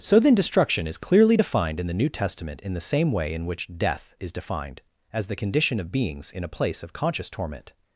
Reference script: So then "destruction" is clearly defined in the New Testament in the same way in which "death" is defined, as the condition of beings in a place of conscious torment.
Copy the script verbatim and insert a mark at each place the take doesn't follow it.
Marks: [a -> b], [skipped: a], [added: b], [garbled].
So then "destruction" is clearly defined in the New Testament in the same way in which "death" is defined, as the condition of beings in a place of conscious torment.